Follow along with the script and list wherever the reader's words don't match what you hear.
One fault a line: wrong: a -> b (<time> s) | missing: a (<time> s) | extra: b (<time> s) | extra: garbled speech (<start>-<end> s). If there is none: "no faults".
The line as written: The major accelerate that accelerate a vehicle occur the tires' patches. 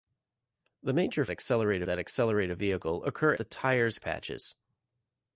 no faults